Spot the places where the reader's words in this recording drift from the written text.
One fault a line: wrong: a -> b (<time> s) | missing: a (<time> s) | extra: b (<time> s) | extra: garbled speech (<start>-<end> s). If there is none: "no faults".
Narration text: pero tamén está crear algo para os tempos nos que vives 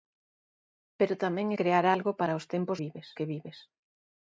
missing: está (1.5 s)
wrong: nos -> vives (2.8 s)